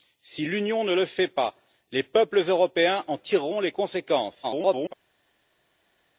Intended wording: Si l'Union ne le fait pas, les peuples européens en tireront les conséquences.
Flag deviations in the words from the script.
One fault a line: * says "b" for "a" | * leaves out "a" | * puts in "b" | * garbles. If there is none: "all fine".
* garbles